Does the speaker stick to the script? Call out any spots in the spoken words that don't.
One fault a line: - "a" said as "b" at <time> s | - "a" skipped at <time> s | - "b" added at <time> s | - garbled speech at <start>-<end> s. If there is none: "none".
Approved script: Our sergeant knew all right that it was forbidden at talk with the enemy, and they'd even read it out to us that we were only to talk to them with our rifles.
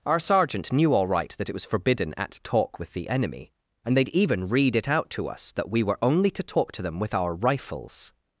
none